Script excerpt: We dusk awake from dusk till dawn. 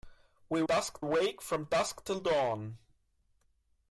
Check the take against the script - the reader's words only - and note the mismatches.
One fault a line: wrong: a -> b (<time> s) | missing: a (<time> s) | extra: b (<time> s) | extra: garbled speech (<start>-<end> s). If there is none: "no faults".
no faults